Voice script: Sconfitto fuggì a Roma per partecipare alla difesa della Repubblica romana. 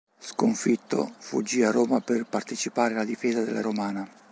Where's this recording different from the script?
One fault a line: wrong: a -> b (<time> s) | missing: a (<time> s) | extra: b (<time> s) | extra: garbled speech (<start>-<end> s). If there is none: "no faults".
missing: Repubblica (3.6 s)